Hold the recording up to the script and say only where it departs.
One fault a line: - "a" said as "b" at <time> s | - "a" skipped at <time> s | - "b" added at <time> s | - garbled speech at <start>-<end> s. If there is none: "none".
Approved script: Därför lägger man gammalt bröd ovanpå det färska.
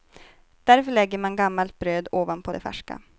none